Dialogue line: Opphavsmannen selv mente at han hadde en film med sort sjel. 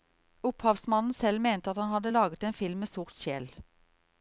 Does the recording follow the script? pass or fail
fail